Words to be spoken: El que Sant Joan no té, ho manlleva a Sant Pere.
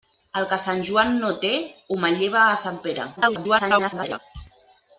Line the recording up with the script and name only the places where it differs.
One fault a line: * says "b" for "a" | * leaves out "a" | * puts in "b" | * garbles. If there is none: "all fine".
* garbles